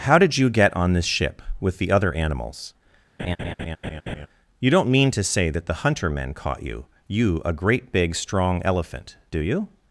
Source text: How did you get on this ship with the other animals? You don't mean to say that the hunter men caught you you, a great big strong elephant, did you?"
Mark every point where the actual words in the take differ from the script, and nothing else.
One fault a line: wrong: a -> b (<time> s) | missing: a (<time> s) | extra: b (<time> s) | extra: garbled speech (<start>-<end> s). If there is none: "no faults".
wrong: did -> do (9.3 s)